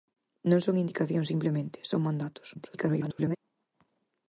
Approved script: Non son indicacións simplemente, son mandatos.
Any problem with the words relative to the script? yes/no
yes